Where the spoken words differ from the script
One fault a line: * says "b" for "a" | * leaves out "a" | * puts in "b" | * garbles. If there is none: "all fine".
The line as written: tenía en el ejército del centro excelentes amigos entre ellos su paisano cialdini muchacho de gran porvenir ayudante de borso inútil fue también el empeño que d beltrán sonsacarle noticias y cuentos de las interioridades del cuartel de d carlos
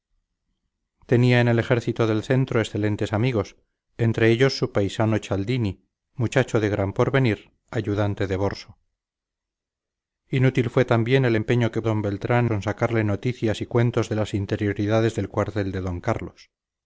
all fine